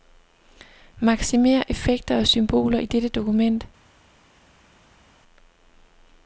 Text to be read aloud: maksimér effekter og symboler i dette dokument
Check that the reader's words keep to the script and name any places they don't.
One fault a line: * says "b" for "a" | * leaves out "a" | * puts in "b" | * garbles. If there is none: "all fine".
all fine